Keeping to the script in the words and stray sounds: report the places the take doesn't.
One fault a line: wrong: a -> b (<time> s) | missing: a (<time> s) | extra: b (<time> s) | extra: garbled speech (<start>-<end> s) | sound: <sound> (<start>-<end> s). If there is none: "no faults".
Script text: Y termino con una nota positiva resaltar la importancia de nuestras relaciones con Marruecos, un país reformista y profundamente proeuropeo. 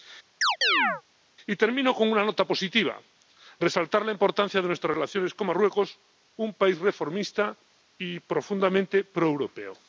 sound: chirp (0.4-1.0 s)